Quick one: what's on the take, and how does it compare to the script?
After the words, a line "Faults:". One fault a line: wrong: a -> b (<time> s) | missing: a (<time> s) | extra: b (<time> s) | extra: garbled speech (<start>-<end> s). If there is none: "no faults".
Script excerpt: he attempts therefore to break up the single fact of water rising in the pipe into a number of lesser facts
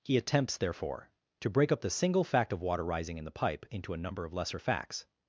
he attempts therefore to break up the single fact of water rising in the pipe into a number of lesser facts
Faults:
no faults